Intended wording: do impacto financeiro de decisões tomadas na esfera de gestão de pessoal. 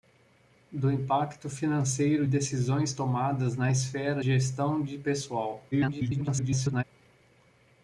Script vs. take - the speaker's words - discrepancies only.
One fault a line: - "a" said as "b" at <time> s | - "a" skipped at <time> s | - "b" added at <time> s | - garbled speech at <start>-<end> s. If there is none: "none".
- "de" skipped at 2.2 s
- "de" skipped at 4.2 s
- garbled speech at 5.7-6.8 s